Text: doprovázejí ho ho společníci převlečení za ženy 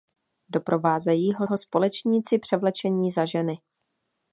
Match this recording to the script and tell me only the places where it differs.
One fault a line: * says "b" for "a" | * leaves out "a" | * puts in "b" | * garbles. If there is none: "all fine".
all fine